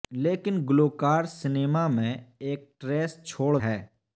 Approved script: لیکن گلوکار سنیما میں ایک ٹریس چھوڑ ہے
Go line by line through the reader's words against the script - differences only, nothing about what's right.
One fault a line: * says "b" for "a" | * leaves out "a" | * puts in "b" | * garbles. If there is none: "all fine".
all fine